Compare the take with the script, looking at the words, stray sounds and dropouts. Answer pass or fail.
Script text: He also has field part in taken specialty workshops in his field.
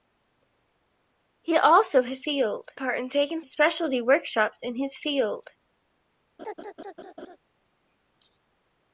fail